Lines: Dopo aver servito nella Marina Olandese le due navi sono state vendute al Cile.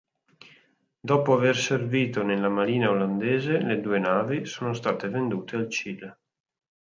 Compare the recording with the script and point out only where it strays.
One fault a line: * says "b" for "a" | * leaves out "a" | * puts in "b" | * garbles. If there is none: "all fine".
all fine